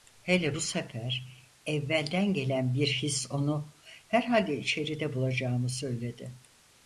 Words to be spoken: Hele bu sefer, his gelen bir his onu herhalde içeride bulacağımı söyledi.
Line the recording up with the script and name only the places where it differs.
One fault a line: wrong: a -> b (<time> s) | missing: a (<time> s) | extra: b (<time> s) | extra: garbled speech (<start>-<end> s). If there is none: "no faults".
wrong: his -> evvelden (1.7 s)